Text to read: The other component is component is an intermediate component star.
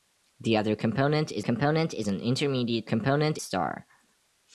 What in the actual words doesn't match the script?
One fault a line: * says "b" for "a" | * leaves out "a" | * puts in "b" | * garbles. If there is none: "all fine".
all fine